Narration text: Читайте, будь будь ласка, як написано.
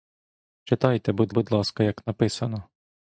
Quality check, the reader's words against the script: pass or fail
pass